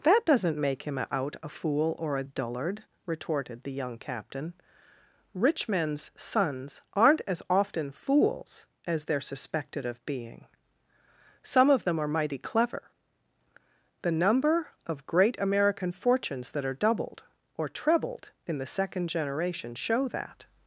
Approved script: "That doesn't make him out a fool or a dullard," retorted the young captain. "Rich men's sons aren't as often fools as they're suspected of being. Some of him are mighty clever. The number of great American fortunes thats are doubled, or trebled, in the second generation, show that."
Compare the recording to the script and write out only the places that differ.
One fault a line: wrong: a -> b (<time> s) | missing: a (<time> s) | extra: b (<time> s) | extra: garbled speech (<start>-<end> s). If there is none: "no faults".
wrong: him -> them (11.8 s)
wrong: thats -> that (16.5 s)